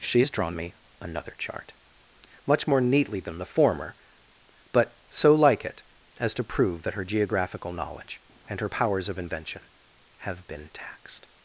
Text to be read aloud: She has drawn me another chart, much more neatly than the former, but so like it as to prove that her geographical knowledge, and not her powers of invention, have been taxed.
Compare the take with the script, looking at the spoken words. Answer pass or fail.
fail